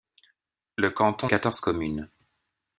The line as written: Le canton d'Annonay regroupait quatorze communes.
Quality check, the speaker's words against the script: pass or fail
fail